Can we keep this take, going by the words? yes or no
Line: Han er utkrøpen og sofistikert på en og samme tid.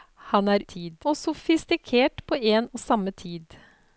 no